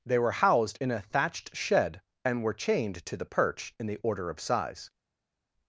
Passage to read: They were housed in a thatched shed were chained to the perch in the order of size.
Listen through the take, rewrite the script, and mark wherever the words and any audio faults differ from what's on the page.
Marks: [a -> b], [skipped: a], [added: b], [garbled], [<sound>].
They were housed in a thatched shed [added: and] were chained to the perch in the order of size.